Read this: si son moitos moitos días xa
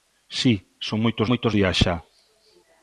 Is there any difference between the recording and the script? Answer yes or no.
no